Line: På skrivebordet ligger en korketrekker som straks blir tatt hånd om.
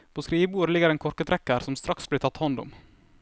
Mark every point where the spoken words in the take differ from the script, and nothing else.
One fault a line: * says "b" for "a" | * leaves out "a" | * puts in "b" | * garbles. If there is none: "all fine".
all fine